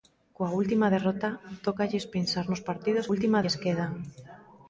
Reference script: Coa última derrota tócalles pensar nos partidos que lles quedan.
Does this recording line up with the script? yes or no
no